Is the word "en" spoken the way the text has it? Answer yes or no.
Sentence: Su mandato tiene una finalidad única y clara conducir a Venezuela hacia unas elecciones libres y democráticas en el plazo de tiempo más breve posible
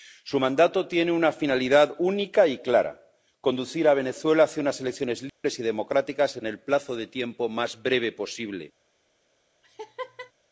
yes